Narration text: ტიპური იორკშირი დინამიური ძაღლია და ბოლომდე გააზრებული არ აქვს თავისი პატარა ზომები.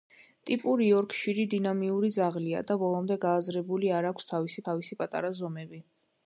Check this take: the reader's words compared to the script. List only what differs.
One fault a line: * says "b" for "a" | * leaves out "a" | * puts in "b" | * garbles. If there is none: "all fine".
* puts in "თავისი"